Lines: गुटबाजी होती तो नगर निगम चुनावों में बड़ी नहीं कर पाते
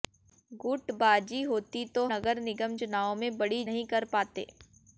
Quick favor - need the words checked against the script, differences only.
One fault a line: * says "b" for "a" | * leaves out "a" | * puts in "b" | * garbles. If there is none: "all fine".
all fine